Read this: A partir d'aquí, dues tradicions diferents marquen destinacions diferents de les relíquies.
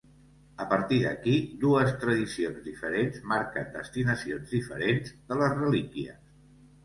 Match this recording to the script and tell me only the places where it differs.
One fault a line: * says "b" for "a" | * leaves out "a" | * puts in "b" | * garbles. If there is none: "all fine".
all fine